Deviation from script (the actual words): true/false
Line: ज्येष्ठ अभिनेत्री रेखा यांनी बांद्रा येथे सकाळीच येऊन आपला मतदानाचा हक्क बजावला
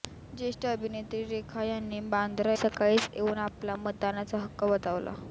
true